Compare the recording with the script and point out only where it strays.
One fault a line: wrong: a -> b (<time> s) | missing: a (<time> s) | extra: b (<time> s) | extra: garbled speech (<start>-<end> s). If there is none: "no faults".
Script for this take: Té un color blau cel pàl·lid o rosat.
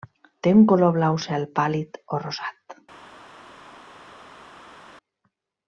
no faults